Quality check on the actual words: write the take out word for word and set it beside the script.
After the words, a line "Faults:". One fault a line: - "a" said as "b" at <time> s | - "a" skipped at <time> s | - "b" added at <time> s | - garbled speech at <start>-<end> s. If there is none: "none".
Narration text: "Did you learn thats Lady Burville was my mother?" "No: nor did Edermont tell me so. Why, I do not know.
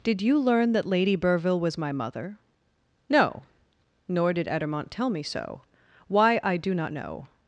"Did you learn that Lady Burville was my mother?" "No: nor did Edermont tell me so. Why, I do not know.
Faults:
- "thats" said as "that" at 0.7 s